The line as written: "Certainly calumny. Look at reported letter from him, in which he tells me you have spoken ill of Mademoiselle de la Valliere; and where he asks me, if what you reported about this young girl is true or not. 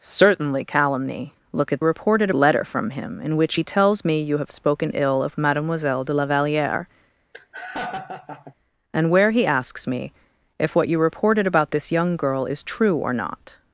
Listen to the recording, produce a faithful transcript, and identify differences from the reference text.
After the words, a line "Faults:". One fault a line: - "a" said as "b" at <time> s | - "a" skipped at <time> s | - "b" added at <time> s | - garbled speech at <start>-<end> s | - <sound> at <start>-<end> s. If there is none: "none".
"Certainly calumny. Look at reported letter from him, in which he tells me you have spoken ill of Mademoiselle de la Valliere; and where he asks me, if what you reported about this young girl is true or not.
Faults:
- laugh at 7.3-8.5 s